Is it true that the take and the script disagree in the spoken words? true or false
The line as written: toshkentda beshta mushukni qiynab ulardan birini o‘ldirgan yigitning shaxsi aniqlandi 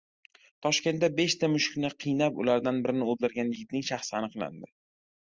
false